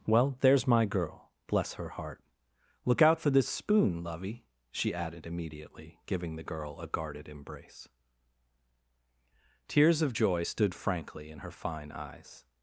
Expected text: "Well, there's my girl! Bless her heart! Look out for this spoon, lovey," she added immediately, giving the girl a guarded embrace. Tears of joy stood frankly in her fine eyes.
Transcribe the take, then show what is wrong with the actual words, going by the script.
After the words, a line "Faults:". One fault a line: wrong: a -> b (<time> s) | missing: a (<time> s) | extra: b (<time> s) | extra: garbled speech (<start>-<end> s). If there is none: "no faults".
"Well, there's my girl! Bless her heart! Look out for this spoon, lovey," she added immediately, giving the girl a guarded embrace. Tears of joy stood frankly in her fine eyes.
Faults:
no faults